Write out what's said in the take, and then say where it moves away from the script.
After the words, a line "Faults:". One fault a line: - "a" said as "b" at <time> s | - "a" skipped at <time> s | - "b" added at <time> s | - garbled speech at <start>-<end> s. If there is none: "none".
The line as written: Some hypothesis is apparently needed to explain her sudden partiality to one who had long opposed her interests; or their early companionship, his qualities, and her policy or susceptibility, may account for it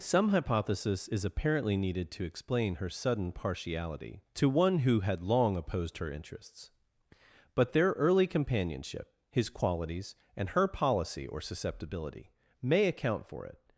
Some hypothesis is apparently needed to explain her sudden partiality to one who had long opposed her interests; but their early companionship, his qualities, and her policy or susceptibility, may account for it
Faults:
- "or" said as "but" at 7.5 s